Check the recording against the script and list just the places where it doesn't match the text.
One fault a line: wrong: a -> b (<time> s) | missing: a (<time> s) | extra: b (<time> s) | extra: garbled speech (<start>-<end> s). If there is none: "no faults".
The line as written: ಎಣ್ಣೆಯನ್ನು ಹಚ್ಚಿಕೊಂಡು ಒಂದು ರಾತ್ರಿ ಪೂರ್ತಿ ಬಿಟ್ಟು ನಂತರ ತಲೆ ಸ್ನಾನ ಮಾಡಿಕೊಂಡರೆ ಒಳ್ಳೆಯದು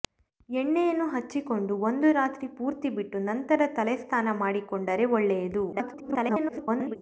extra: garbled speech (5.7-7.0 s)